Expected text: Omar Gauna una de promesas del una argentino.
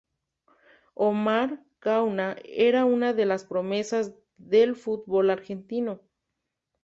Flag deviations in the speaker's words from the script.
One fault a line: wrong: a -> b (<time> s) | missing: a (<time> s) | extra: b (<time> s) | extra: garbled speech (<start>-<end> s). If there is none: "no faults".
extra: era (2.4 s)
extra: las (3.3 s)
wrong: una -> fútbol (4.8 s)